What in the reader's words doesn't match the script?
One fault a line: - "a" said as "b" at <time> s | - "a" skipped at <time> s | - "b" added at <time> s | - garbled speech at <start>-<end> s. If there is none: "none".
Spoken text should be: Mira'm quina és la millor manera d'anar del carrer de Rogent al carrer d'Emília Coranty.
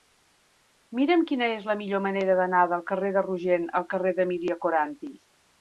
none